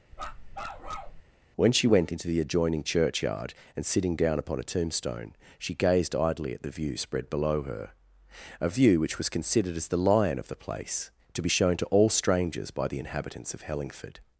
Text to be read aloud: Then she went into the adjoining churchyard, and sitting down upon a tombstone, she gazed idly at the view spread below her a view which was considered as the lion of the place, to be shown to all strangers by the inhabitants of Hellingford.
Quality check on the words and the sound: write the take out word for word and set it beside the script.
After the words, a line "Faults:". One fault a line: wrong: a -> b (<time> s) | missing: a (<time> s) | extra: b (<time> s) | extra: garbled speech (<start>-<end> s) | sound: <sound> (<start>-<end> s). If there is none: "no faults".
When she went into the adjoining churchyard, and sitting down upon a tombstone, she gazed idly at the view spread below her a view which was considered as the lion of the place, to be shown to all strangers by the inhabitants of Hellingford.
Faults:
sound: bark (0.1-1.2 s)
wrong: Then -> When (1.6 s)